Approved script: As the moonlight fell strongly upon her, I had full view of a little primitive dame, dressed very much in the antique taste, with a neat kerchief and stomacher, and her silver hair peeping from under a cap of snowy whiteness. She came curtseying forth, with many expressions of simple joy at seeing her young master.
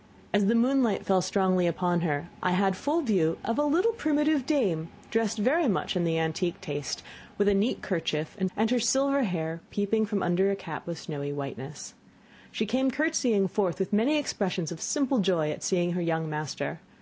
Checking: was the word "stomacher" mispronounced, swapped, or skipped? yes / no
yes